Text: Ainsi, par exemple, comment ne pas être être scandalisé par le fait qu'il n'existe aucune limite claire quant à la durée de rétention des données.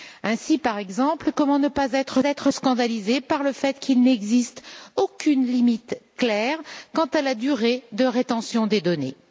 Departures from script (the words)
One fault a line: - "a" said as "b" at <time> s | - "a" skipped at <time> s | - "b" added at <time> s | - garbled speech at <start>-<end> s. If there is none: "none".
none